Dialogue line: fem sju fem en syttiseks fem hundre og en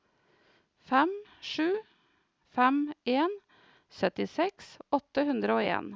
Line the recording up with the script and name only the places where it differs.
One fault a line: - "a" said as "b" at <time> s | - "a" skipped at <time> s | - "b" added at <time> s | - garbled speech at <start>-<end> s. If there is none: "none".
- "fem" said as "åtte" at 4.9 s